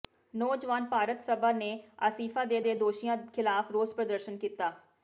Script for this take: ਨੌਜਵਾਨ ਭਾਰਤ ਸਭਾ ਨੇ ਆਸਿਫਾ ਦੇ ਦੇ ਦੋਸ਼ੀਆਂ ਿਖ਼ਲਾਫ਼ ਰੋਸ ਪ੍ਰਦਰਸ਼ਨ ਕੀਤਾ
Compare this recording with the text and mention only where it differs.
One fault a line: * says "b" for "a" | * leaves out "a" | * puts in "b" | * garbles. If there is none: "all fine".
all fine